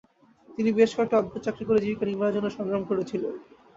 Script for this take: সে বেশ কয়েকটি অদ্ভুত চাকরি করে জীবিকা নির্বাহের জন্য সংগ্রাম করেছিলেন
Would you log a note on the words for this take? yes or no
yes